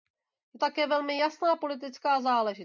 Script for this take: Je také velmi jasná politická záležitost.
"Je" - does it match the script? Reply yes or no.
yes